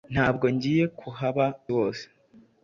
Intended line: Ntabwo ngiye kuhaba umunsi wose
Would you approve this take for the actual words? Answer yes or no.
no